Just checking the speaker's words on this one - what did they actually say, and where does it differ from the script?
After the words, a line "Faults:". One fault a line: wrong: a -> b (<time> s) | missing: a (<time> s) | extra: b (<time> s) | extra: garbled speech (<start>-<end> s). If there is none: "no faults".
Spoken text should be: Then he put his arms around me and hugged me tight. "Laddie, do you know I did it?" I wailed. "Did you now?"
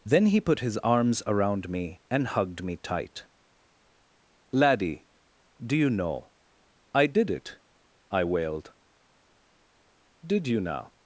Then he put his arms around me and hugged me tight. "Laddie, do you know I did it?" I wailed. "Did you now?"
Faults:
no faults